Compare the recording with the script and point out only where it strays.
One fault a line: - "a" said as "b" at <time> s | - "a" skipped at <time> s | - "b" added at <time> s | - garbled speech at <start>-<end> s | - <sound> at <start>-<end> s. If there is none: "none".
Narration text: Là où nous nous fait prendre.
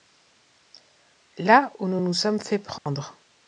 - "sommes" added at 2.1 s
- dropout at 2.8-2.9 s